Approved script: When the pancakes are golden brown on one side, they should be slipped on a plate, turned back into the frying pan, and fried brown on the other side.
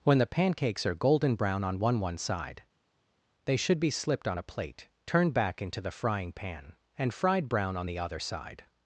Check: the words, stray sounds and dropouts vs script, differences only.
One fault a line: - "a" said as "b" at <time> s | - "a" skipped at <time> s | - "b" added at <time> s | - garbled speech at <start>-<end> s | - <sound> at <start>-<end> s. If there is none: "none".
- "one" added at 2.0 s